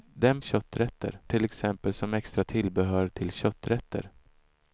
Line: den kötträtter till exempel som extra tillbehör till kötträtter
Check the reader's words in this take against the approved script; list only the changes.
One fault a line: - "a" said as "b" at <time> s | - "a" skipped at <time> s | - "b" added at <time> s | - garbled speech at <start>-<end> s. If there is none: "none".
none